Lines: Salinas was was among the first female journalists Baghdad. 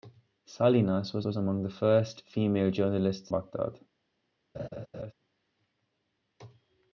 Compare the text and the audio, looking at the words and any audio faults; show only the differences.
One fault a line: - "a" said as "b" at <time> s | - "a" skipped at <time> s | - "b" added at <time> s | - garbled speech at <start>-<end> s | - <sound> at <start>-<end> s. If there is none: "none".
- laugh at 4.5-5.1 s